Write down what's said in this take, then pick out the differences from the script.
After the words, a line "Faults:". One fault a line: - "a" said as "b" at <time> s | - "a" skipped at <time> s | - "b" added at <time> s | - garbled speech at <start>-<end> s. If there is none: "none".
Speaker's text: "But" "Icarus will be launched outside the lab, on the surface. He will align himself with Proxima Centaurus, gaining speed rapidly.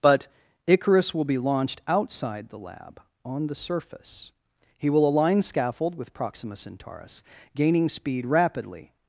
"But" "Icarus will be launched outside the lab, on the surface. He will align scaffold with Proxima Centaurus, gaining speed rapidly.
Faults:
- "himself" said as "scaffold" at 5.4 s